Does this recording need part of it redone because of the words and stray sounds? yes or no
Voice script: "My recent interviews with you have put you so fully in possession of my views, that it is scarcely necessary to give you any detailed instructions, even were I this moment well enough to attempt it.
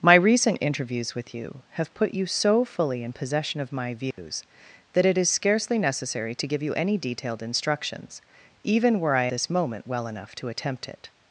yes